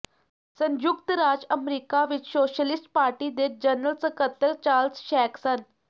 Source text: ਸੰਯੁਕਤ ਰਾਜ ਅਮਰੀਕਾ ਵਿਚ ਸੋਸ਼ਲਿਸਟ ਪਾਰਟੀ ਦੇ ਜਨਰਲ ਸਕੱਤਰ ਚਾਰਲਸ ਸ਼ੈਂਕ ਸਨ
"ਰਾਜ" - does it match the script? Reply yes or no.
yes